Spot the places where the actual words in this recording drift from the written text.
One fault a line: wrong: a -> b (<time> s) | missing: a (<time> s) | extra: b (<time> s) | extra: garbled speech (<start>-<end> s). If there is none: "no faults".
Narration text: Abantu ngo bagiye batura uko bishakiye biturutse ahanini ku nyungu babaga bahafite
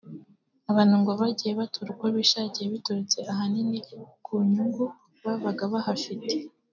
no faults